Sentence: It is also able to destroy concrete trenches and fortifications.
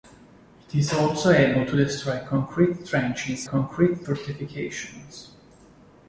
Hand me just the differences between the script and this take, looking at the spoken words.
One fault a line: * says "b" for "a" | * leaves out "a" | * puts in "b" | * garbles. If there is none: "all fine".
* says "concrete" for "and"